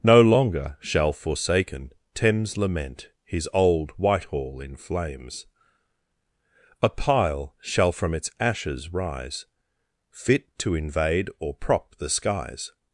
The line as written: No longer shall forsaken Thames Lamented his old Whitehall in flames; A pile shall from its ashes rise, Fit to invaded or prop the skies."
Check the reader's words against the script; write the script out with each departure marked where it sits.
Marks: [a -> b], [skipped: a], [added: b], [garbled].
No longer shall forsaken Thames [Lamented -> Lament] his old Whitehall in flames; A pile shall from its ashes rise, Fit to [invaded -> invade] or prop the skies."